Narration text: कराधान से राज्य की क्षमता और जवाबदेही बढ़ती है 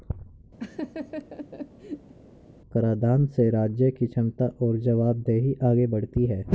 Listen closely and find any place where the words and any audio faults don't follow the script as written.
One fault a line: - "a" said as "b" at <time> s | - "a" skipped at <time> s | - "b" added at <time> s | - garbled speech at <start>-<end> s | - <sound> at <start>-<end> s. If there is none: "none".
- laugh at 0.6-2.1 s
- "आगे" added at 5.6 s